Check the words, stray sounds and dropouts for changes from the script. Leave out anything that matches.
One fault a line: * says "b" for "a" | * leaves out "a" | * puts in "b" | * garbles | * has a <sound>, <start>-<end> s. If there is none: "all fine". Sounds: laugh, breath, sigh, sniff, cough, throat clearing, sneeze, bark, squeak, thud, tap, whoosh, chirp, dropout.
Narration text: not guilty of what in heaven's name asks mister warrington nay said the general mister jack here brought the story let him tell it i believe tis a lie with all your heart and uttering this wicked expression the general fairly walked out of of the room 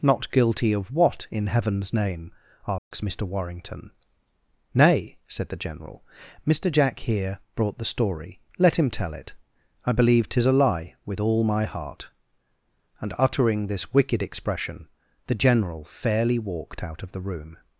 * has a dropout, 2.8-2.9 s
* says "my" for "your"
* leaves out "of"